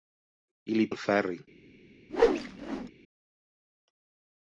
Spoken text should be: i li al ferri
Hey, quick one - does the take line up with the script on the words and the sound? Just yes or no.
no